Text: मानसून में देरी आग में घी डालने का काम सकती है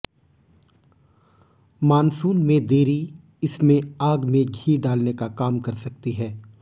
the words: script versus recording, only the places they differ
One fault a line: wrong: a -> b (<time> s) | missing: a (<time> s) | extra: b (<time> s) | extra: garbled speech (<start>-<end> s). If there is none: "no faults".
extra: इसमें (3.4 s)
extra: कर (5.6 s)